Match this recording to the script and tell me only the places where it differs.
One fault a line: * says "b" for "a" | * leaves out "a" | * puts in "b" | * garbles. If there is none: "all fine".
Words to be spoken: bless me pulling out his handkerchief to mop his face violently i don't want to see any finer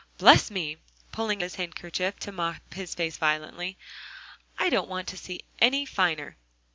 * leaves out "out"